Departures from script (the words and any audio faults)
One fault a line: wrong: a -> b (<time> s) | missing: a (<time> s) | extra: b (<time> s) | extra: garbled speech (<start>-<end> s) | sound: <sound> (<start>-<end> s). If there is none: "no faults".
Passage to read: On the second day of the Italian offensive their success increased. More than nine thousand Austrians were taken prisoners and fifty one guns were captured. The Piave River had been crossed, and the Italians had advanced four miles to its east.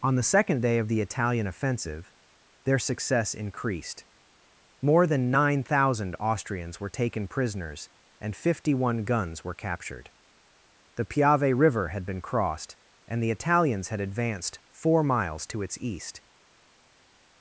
no faults